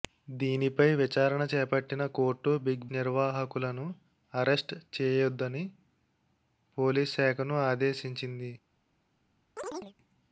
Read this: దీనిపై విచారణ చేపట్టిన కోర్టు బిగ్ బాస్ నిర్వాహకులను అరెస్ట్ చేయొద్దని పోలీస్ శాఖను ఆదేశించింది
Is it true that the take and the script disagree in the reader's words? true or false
true